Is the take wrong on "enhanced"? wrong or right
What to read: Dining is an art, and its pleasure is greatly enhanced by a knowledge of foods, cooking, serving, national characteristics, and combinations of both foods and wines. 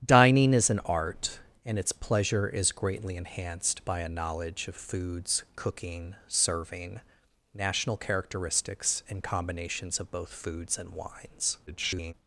right